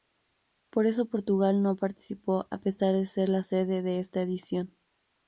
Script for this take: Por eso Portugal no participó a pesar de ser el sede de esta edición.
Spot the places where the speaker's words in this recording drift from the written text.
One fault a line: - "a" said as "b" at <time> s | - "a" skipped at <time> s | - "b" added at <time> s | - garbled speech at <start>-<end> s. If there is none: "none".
- "el" said as "la" at 3.3 s